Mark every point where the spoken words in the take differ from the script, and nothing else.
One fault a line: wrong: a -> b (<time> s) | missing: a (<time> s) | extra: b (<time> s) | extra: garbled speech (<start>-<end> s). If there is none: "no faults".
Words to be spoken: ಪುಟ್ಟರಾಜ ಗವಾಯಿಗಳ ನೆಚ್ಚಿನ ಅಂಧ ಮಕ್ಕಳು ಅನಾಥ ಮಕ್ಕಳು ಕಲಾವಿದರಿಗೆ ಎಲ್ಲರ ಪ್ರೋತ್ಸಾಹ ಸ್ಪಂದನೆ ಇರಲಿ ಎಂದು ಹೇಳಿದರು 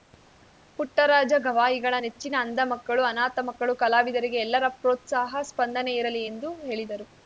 no faults